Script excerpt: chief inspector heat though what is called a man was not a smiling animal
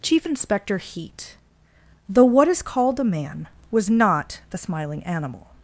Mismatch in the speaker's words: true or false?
true